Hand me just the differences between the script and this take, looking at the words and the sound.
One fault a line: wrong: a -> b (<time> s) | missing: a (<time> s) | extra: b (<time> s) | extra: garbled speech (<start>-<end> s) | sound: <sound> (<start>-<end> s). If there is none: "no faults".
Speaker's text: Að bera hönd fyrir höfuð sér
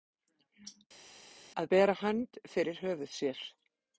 no faults